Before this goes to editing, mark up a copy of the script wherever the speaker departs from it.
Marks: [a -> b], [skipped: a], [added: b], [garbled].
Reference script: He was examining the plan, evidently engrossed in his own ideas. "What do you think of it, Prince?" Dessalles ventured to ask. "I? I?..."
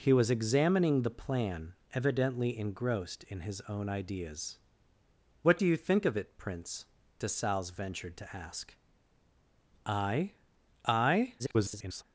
He was examining the plan, evidently engrossed in his own ideas. "What do you think of it, Prince?" Dessalles ventured to ask. "I? I?..." [garbled]